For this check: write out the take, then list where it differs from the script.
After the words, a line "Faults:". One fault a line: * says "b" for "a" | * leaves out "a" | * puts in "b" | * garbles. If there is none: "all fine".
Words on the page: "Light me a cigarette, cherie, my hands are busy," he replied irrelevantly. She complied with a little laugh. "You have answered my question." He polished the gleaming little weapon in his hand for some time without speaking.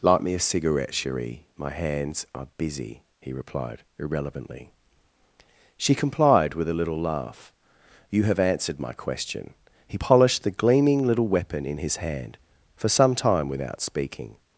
"Light me a cigarette, cherie, my hands are busy," he replied irrelevantly. She complied with a little laugh. "You have answered my question." He polished the gleaming little weapon in his hand for some time without speaking.
Faults:
all fine